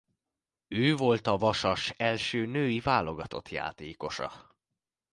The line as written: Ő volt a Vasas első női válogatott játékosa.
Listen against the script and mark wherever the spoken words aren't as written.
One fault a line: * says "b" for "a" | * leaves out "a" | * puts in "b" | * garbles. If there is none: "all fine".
all fine